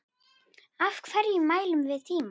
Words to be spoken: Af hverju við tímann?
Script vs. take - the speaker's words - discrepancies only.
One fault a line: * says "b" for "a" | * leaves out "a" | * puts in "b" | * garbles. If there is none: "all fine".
* puts in "mælum"